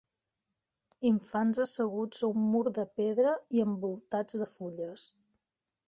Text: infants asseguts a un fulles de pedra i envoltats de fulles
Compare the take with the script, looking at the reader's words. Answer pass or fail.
fail